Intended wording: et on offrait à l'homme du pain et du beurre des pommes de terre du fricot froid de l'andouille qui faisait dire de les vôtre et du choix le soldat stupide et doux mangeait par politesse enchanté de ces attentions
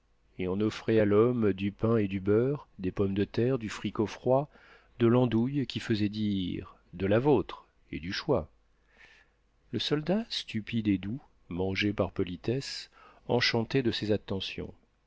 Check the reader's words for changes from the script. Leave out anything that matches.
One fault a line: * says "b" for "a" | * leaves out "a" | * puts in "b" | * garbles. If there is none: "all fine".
* says "la" for "les"